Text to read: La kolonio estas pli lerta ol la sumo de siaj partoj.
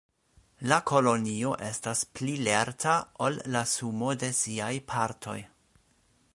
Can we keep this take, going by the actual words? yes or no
yes